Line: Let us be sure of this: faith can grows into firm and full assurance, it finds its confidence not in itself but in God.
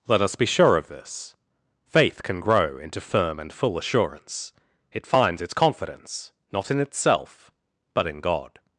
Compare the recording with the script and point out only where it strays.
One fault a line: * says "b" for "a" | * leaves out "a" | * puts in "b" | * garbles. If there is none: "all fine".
* says "grow" for "grows"